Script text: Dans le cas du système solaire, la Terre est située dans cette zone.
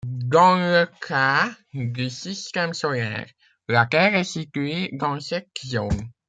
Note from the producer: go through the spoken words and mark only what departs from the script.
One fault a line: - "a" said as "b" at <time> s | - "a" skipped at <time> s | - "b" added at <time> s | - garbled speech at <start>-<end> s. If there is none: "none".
none